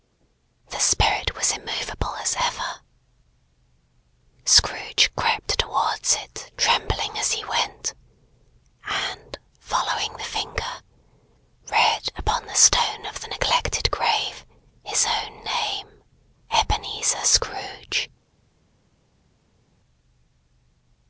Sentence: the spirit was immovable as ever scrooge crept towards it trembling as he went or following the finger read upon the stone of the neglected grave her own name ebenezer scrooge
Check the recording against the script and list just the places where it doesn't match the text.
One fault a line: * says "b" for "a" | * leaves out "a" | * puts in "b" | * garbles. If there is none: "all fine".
* says "and" for "or"
* says "his" for "her"